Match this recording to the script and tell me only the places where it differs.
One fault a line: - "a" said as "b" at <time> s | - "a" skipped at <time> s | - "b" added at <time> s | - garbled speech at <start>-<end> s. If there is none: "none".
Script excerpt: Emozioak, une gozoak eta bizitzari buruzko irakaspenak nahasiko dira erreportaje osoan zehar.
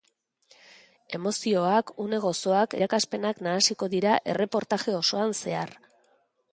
- "eta bizitzari buruzko" skipped at 2.8 s